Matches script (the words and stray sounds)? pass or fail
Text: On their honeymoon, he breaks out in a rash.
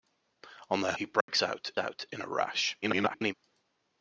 fail